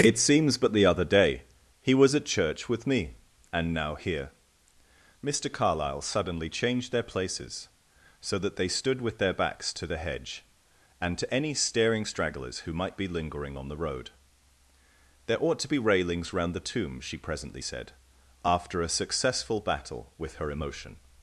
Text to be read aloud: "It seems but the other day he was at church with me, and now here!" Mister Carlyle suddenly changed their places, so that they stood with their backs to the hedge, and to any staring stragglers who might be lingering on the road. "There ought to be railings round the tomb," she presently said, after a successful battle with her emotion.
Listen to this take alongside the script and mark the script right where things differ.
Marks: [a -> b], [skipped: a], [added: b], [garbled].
"It seems but the other day he was at church with me, and now here!" Mister Carlyle suddenly changed their places, so that they stood with their backs to the hedge, and to any staring stragglers who might be lingering on the road. "There ought to be railings round the tomb," she presently said, after a successful battle with her emotion.